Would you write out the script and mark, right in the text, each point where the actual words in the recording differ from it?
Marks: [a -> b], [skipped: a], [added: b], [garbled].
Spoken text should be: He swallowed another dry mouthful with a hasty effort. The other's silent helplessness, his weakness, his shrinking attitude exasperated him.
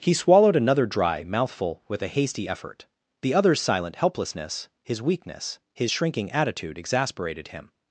He swallowed another dry mouthful with a hasty effort. The other's silent helplessness, his weakness, his shrinking attitude exasperated him.